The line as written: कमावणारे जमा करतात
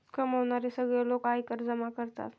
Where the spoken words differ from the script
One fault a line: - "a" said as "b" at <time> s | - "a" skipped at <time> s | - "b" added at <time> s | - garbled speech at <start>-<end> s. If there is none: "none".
- "सगळे लोक आयकर" added at 0.7 s